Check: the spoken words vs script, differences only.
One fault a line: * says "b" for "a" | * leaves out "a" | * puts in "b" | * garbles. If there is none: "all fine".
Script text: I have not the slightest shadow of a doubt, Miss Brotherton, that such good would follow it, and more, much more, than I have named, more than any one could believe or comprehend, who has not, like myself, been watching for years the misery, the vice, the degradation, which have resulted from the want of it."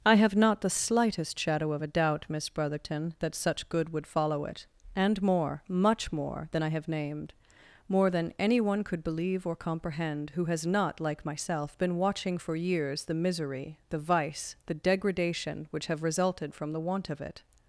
all fine